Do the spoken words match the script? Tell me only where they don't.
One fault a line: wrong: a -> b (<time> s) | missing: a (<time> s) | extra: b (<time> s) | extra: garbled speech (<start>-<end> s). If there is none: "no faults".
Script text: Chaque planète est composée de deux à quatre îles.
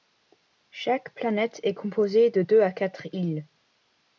no faults